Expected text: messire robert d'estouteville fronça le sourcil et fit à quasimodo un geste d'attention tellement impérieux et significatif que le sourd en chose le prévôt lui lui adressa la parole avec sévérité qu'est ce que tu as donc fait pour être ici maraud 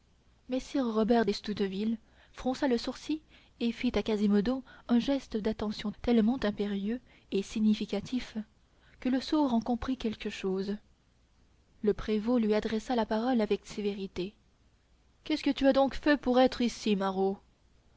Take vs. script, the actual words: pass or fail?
fail